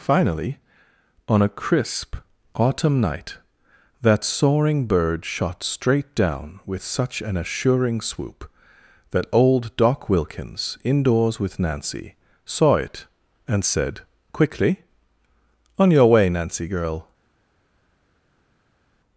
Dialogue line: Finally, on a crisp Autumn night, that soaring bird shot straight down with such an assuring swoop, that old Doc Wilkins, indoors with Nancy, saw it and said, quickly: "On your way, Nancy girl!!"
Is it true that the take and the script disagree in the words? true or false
false